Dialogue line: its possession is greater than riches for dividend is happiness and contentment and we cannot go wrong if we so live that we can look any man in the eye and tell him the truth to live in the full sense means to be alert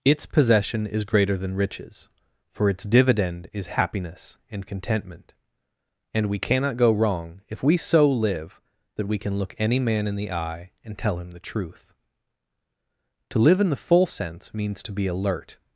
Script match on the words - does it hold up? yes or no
no